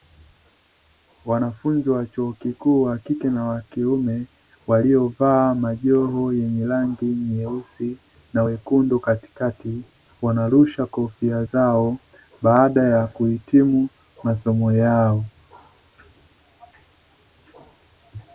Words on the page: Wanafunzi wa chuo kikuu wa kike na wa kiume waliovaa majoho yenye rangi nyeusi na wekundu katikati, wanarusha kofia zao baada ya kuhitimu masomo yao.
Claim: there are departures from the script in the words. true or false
false